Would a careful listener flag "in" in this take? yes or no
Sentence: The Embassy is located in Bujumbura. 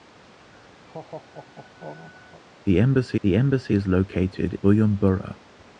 yes